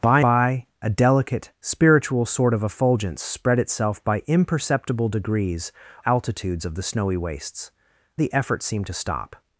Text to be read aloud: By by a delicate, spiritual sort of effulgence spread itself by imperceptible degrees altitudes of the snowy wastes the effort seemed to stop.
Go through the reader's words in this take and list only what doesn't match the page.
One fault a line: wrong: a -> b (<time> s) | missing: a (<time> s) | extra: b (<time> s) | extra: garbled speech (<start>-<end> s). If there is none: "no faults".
no faults